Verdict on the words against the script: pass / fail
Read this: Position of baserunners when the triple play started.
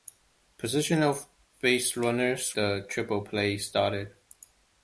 fail